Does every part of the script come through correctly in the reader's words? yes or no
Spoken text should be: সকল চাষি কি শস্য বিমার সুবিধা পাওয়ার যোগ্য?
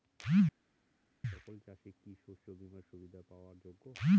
yes